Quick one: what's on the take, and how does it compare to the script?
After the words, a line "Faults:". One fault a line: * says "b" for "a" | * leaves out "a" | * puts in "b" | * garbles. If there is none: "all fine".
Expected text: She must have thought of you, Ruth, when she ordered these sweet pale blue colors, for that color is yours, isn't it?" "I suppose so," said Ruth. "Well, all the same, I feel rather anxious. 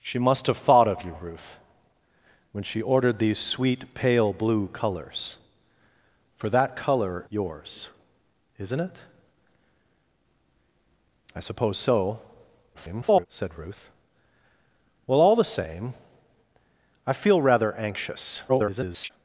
She must have thought of you, Ruth, when she ordered these sweet pale blue colors, for that color yours, isn't it?" "I suppose so," [garbled] said Ruth. "Well, all the same, I feel rather anxious. [garbled]
Faults:
* leaves out "is"
* garbles
* garbles